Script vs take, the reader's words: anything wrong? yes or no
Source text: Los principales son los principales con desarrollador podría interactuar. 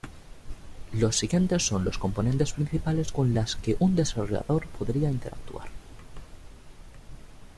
yes